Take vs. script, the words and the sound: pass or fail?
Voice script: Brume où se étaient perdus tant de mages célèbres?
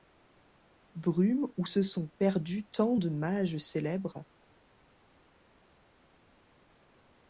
fail